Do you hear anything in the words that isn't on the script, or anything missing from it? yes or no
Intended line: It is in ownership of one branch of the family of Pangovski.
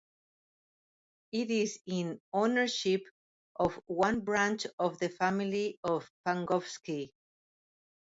no